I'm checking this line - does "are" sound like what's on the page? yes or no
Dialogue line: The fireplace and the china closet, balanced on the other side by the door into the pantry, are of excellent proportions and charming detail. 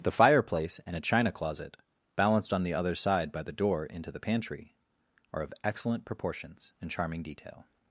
yes